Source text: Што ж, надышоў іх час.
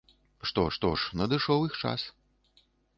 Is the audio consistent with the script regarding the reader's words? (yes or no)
no